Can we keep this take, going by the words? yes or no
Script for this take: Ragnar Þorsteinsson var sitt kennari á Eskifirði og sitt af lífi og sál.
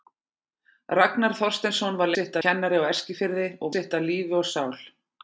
yes